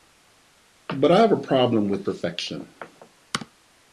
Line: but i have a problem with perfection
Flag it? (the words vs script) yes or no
no